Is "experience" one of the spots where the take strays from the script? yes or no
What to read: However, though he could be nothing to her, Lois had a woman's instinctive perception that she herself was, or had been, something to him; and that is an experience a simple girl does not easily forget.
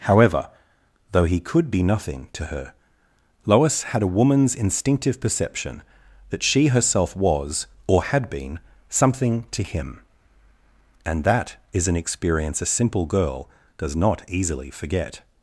no